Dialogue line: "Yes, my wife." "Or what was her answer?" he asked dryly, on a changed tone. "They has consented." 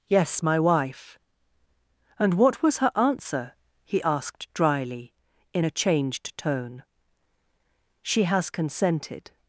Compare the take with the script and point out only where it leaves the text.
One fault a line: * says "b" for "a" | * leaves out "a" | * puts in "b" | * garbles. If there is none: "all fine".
* says "And" for "Or"
* says "in" for "on"
* says "She" for "They"